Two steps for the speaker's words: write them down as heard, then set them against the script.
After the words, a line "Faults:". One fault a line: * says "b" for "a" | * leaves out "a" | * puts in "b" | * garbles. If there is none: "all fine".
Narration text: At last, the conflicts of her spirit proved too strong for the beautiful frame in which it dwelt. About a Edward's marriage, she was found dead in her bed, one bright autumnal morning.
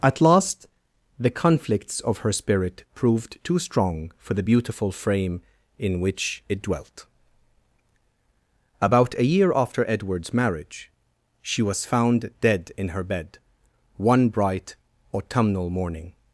At last, the conflicts of her spirit proved too strong for the beautiful frame in which it dwelt. About a year after Edward's marriage, she was found dead in her bed, one bright autumnal morning.
Faults:
* puts in "year after"